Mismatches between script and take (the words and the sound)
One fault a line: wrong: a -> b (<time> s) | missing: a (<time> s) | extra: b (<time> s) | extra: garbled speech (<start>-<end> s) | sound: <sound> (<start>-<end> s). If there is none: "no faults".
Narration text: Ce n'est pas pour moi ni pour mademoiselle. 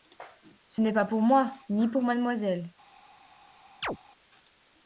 sound: chirp (3.8-4.0 s)